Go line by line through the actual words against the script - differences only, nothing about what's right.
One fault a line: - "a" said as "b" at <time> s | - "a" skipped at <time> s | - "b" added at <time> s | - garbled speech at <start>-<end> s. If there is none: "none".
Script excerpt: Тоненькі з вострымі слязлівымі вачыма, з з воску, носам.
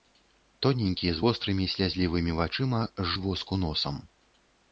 none